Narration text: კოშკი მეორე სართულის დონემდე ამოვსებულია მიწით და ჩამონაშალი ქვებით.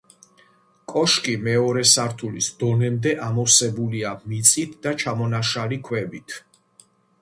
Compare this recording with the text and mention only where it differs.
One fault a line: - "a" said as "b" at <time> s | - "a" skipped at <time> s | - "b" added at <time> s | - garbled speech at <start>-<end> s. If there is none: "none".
none